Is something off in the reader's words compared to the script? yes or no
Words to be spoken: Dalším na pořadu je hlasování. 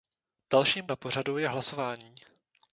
no